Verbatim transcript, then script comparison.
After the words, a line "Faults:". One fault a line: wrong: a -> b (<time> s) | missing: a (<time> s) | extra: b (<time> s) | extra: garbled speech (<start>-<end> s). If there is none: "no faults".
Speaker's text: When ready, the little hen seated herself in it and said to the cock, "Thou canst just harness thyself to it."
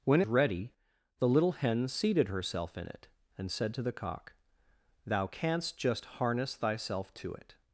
When ready, the little hen seated herself in it and said to the cock, "Thou canst just harness thyself to it."
Faults:
no faults